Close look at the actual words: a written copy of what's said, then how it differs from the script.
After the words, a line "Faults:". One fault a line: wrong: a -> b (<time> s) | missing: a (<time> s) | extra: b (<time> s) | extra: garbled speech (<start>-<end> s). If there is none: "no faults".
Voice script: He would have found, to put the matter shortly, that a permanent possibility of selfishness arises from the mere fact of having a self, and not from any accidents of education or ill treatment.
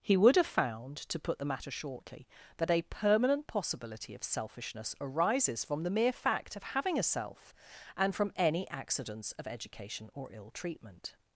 He would have found, to put the matter shortly, that a permanent possibility of selfishness arises from the mere fact of having a self, and from any accidents of education or ill treatment.
Faults:
missing: not (8.2 s)